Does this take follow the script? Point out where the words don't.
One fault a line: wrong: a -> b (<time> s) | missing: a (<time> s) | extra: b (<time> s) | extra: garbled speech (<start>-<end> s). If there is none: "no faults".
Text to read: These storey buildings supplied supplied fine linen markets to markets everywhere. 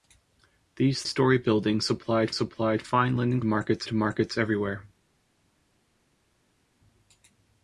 no faults